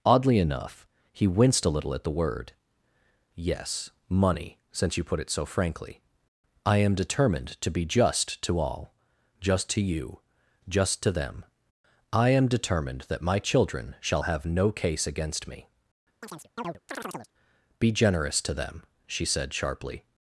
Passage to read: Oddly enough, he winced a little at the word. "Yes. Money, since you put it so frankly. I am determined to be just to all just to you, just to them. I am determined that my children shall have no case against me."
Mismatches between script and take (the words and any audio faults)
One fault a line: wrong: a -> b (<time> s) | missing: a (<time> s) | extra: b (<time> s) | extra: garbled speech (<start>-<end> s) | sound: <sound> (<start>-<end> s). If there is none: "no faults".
sound: chirp (16.2-17.3 s)
extra: Be generous to them she said sharply (17.8 s)